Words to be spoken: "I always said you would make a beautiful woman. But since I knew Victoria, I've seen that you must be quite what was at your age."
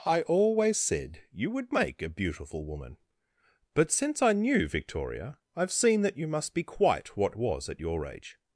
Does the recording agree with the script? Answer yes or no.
yes